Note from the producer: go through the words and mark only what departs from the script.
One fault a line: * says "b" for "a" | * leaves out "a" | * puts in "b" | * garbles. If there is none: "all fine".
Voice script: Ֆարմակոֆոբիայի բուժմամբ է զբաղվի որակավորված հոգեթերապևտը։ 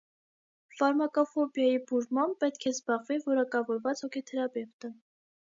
* puts in "պետք"